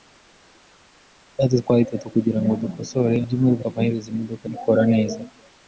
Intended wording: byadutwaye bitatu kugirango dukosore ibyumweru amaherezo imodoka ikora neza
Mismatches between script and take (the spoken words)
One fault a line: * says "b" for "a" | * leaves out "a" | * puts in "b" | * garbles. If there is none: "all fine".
all fine